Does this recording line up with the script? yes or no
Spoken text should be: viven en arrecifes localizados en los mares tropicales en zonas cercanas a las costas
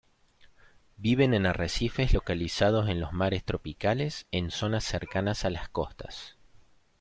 yes